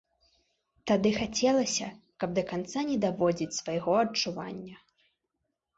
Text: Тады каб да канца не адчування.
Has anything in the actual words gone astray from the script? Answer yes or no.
yes